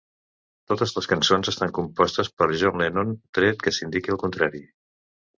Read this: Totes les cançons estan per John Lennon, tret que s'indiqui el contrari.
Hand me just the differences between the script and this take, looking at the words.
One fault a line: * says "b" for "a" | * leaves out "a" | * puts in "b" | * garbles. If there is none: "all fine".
* puts in "compostes"